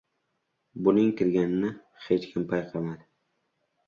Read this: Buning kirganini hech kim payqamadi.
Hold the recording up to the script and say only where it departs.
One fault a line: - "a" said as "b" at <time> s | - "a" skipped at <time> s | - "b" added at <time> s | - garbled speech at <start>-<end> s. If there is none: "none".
none